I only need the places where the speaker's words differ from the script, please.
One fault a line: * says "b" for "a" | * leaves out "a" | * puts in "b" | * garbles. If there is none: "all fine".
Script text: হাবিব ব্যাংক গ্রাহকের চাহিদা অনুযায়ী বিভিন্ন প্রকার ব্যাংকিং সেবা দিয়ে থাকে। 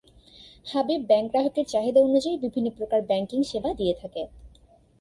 all fine